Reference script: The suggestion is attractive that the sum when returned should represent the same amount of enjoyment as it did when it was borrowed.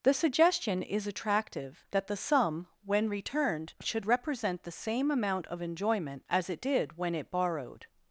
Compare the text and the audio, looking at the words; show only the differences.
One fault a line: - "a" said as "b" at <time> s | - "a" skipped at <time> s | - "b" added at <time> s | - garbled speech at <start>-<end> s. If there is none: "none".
- "was" skipped at 7.3 s